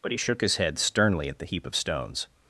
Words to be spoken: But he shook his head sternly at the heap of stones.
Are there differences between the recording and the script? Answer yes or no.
no